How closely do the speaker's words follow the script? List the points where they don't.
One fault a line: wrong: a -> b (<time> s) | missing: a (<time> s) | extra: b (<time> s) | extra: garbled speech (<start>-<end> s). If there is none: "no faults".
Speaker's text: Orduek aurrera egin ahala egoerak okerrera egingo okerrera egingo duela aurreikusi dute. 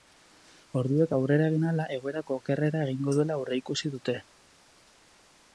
missing: okerrera egingo (3.2 s)